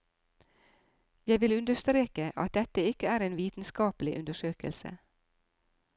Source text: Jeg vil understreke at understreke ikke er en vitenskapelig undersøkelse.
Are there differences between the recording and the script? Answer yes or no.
yes